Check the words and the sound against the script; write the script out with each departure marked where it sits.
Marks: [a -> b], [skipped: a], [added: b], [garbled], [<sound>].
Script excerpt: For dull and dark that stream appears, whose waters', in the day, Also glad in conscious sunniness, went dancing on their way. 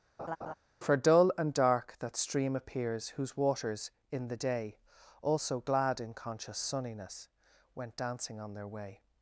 [laugh] For dull and dark that stream appears, whose waters', in the day, Also glad in conscious sunniness, went dancing on their way.